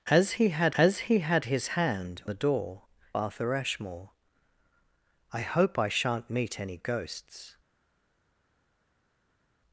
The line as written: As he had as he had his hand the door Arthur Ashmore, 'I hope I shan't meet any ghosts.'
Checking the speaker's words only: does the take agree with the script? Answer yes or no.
yes